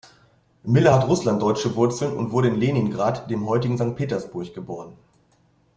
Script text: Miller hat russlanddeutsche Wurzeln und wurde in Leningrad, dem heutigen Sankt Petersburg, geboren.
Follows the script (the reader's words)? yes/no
yes